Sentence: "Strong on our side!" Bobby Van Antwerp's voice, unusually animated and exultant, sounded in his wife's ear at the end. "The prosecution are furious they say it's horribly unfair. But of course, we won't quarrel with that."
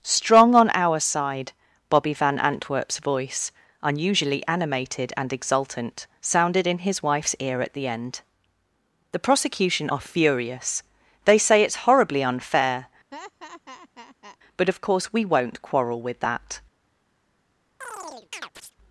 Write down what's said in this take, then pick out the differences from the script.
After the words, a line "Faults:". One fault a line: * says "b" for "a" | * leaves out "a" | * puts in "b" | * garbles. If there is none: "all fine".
"Strong on our side!" Bobby Van Antwerp's voice, unusually animated and exultant, sounded in his wife's ear at the end. "The prosecution are furious they say it's horribly unfair. But of course, we won't quarrel with that."
Faults:
all fine